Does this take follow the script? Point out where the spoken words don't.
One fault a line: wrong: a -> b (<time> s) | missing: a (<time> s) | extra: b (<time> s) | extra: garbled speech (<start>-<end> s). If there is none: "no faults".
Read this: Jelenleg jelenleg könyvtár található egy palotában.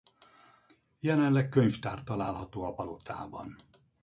missing: jelenleg (1.5 s)
wrong: egy -> a (2.6 s)